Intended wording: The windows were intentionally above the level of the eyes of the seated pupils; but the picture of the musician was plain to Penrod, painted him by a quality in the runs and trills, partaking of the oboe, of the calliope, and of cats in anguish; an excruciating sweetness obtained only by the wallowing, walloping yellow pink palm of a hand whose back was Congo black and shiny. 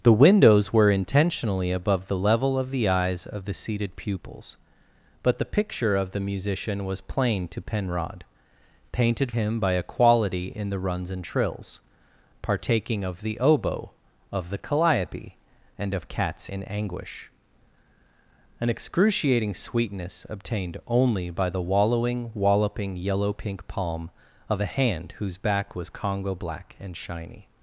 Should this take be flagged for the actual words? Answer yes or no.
no